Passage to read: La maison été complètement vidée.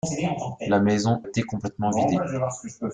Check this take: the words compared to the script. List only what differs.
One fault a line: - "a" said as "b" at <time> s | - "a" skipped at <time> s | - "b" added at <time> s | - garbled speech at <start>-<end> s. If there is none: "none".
none